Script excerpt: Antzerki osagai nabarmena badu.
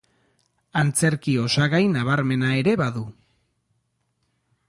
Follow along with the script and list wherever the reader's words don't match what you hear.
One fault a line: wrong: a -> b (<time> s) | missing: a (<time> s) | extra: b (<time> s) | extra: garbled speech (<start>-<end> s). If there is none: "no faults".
extra: ere (2.6 s)